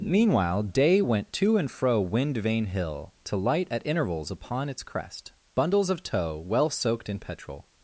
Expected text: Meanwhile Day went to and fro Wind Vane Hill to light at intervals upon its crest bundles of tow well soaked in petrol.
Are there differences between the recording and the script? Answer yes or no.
no